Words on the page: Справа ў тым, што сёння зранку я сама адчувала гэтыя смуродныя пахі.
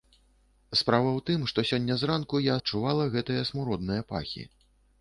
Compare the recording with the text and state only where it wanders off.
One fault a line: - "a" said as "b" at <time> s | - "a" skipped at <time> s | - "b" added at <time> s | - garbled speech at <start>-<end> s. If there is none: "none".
- "сама" skipped at 2.6 s